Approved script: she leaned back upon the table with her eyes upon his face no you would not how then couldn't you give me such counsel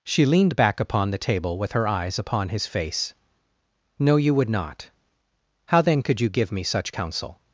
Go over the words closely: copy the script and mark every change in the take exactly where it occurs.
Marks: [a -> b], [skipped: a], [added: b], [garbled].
she leaned back upon the table with her eyes upon his face no you would not how then [couldn't -> could] you give me such counsel